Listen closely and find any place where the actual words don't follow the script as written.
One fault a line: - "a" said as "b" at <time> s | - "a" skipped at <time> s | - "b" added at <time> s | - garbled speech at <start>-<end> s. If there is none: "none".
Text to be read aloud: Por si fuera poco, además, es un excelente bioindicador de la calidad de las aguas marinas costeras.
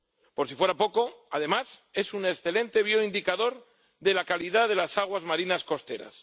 none